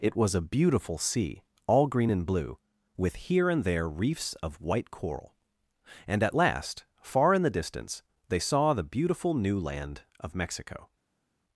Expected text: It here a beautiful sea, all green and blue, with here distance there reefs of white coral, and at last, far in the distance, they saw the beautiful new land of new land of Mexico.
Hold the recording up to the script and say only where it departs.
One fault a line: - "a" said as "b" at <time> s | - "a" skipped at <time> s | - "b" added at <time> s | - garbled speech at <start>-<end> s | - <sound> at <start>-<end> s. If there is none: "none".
- "here" said as "was" at 0.1 s
- "distance" said as "and" at 3.5 s
- "new land of" skipped at 10.4 s